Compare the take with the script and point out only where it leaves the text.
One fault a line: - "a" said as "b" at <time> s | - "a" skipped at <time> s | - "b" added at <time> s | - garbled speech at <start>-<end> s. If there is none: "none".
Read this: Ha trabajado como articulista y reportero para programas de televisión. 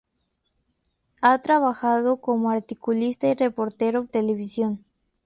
- "para programas de" skipped at 4.1 s